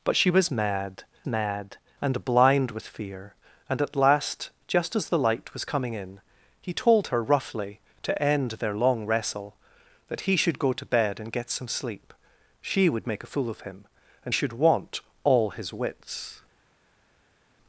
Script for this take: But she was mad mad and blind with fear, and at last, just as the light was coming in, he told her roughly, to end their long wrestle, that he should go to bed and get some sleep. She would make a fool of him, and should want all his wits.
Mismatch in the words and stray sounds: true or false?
false